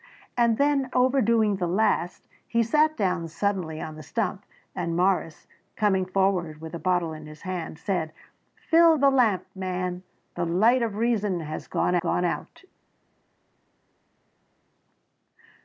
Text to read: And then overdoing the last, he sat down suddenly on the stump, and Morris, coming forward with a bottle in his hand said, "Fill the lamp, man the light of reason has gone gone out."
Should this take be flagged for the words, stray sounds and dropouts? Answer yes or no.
no